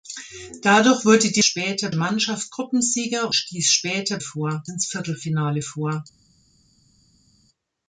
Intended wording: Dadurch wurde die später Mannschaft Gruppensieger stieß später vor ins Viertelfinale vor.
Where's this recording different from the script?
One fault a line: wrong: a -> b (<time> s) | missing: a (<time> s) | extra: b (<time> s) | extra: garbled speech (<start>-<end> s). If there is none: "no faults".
no faults